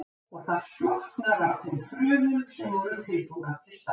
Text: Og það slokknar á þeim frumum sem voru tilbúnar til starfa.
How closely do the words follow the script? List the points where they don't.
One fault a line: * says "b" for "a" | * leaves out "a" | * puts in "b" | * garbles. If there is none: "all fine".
all fine